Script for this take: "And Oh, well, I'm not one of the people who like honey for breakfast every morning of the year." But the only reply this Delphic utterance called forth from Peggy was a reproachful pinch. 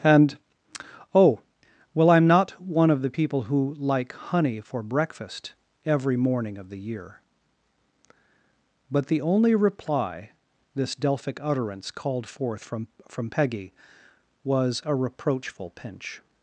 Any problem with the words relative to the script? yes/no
yes